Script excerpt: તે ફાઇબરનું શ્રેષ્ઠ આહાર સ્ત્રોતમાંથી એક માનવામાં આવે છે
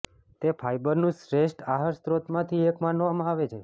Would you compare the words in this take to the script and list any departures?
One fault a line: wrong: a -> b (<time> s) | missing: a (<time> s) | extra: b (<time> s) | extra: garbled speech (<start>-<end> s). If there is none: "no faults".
no faults